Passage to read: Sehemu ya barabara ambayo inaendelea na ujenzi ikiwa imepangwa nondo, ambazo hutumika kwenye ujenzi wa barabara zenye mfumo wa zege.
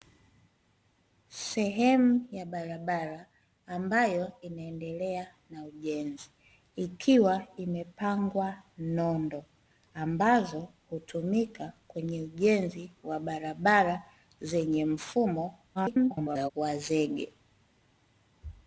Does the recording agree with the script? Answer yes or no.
no